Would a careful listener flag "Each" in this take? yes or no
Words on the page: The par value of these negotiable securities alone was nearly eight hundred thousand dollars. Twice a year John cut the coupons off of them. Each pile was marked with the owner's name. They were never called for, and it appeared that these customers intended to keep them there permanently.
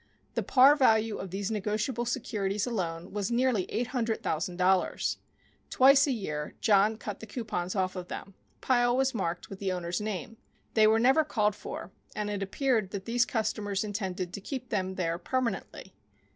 yes